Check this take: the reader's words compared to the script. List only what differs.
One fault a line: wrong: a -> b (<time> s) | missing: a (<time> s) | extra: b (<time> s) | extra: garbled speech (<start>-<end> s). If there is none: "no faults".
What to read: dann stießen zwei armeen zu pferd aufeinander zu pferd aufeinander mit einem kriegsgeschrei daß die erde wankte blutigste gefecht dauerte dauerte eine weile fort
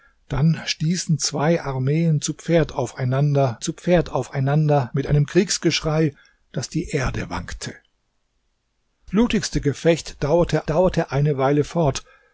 no faults